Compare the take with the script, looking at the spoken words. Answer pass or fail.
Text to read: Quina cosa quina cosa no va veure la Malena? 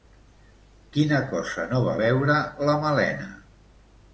fail